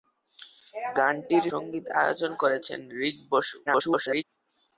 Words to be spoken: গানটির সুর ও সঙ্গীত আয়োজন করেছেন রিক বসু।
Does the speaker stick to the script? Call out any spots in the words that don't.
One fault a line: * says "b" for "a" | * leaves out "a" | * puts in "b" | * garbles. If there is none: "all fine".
* leaves out "সুর ও"
* garbles